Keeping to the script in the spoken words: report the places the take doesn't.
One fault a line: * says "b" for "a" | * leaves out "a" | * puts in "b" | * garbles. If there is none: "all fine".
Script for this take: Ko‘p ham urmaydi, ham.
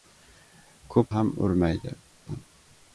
all fine